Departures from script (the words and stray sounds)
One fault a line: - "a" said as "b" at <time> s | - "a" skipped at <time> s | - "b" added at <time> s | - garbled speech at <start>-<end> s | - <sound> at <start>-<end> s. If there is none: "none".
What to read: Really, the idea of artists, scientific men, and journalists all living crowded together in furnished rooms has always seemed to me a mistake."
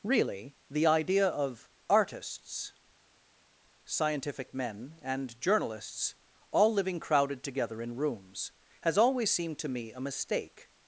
- "furnished" skipped at 8.0 s